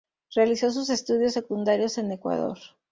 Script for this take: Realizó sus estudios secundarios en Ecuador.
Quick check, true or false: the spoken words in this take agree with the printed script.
true